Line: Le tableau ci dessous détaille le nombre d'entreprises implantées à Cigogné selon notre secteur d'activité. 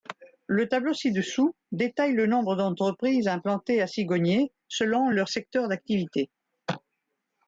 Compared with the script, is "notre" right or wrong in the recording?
wrong